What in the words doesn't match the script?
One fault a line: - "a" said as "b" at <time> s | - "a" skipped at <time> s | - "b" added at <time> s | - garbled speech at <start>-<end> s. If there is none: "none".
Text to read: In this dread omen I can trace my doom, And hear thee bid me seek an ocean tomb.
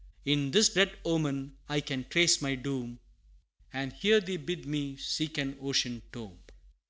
none